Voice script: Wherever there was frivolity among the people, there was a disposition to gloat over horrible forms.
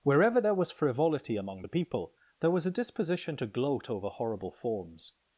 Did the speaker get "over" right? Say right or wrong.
right